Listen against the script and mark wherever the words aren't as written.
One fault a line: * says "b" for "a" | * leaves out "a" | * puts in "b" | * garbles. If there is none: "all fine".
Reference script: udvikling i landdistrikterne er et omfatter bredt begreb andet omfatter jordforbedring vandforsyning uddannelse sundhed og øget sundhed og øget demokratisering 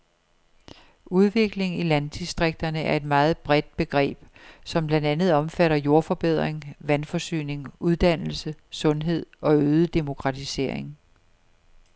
* says "meget" for "omfatter"
* puts in "som blandt"
* leaves out "sundhed og øget"